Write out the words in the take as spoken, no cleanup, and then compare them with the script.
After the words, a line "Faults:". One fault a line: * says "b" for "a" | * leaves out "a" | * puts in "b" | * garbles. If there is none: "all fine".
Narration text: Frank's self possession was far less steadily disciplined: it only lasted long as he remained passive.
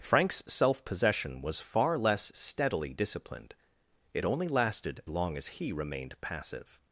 Frank's self possession was far less steadily disciplined: it only lasted long as he remained passive.
Faults:
all fine